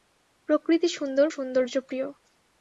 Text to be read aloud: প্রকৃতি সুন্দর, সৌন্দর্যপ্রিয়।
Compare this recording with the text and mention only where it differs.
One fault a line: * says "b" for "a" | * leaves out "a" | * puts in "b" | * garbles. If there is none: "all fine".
all fine